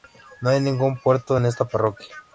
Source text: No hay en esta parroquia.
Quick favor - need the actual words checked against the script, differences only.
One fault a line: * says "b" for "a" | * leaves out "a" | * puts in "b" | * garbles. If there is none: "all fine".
* puts in "ningún puerto"